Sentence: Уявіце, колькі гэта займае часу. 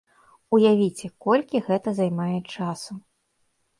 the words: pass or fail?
pass